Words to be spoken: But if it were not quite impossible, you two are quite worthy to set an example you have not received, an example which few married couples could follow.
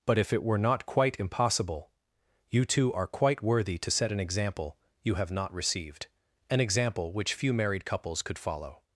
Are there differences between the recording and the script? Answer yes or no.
no